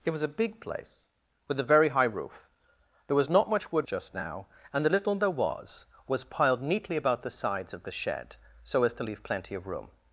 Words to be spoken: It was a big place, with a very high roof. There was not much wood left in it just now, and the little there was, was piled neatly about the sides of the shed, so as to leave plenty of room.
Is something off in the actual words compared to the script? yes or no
yes